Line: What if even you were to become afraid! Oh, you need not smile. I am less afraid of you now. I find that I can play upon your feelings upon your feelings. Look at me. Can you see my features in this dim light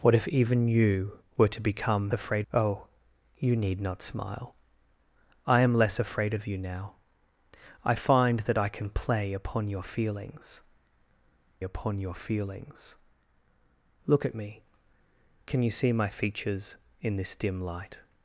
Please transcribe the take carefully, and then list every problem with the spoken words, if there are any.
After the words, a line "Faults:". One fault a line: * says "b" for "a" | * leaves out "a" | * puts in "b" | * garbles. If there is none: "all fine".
What if even you were to become afraid! Oh, you need not smile. I am less afraid of you now. I find that I can play upon your feelings upon your feelings. Look at me. Can you see my features in this dim light
Faults:
all fine